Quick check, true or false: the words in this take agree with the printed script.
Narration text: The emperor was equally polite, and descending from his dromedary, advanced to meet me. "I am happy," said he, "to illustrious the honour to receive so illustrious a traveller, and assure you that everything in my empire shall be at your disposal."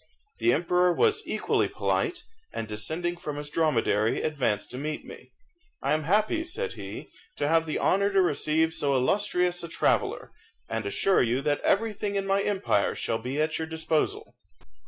false